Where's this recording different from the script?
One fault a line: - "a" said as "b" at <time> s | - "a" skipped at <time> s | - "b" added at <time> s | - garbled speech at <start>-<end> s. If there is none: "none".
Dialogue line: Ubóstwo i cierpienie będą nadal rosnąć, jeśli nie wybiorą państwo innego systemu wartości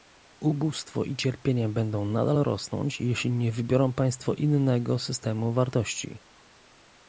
none